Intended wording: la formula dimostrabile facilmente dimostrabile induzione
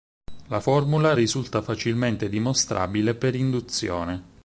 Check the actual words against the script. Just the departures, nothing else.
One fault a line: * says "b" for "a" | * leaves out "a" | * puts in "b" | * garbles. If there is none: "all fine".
* says "risulta" for "dimostrabile"
* puts in "per"